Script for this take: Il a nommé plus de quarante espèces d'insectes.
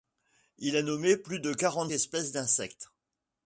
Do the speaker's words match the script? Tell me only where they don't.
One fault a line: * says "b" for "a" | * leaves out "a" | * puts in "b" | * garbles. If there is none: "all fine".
all fine